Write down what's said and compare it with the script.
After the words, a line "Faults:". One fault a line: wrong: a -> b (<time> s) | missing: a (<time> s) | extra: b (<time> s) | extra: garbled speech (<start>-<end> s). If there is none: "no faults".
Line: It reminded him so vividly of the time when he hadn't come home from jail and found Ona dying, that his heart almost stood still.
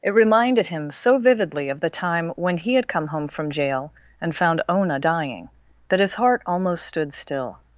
It reminded him so vividly of the time when he had come home from jail and found Ona dying, that his heart almost stood still.
Faults:
wrong: hadn't -> had (2.7 s)